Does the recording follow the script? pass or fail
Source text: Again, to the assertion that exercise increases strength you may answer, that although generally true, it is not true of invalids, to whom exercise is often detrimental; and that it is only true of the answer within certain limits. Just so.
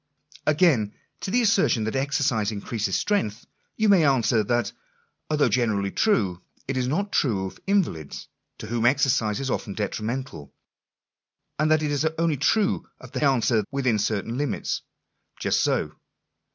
pass